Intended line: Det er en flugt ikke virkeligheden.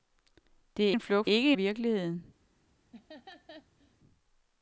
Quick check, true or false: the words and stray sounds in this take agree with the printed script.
false